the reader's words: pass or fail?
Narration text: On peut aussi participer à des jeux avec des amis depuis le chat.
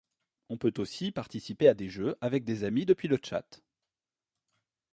pass